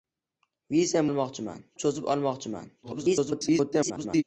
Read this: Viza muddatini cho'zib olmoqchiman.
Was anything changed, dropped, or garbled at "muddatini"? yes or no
yes